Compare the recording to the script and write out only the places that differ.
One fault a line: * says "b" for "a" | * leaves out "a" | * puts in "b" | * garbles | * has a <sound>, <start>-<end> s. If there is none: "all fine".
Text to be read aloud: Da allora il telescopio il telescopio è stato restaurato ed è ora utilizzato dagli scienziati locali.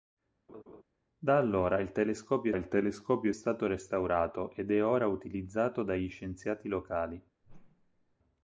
* has a laugh, 0.5-0.8 s
* has a whoosh, 7.4-8.2 s